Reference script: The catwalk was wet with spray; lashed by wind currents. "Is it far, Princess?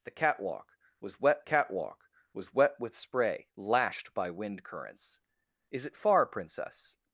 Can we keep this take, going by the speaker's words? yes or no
no